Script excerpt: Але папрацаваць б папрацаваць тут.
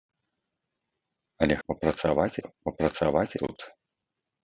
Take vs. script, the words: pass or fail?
pass